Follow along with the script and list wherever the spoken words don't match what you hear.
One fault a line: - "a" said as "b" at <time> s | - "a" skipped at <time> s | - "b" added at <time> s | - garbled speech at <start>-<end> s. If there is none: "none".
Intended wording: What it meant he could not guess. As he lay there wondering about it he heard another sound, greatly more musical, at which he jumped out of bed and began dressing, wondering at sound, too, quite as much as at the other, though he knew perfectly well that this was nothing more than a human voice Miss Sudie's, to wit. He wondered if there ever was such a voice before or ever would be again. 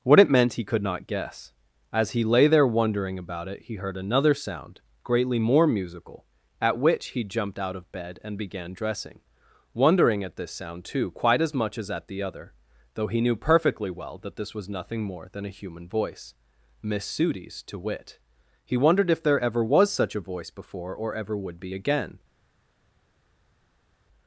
- "this" added at 10.4 s